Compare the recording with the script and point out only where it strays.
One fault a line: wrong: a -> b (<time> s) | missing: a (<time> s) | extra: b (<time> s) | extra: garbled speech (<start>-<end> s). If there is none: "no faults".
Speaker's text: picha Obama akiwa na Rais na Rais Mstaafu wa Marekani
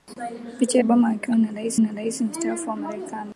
no faults